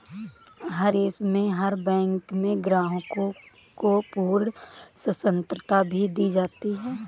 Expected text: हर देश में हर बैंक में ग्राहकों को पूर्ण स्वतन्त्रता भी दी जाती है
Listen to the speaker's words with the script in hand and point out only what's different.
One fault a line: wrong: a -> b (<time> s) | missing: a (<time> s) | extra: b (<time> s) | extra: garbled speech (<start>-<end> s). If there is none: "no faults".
no faults